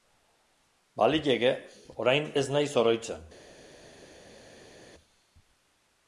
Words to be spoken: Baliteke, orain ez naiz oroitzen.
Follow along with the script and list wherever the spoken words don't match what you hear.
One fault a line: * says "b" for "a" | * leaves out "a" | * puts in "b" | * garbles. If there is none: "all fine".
all fine